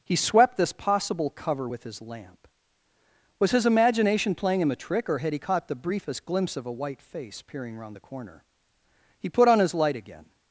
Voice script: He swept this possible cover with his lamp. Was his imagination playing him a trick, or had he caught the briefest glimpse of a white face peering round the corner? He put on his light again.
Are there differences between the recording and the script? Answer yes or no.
no